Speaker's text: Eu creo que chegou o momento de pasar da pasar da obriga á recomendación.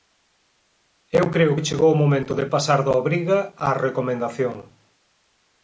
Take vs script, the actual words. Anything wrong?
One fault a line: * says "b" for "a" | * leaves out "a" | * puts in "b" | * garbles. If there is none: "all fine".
* leaves out "pasar da"